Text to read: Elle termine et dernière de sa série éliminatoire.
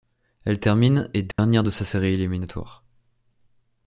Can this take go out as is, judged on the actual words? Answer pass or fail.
pass